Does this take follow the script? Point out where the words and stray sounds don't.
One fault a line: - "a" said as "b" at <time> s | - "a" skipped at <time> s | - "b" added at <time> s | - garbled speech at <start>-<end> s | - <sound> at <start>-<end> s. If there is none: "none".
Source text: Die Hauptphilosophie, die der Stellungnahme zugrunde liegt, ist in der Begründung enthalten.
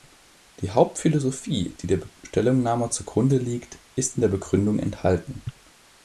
none